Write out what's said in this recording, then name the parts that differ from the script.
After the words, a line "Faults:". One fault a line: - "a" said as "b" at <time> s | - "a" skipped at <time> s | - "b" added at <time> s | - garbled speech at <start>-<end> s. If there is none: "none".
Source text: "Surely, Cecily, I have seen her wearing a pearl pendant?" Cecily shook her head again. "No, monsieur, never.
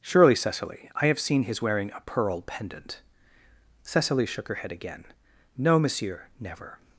"Surely, Cecily, I have seen his wearing a pearl pendant?" Cecily shook her head again. "No, monsieur, never.
Faults:
- "her" said as "his" at 1.4 s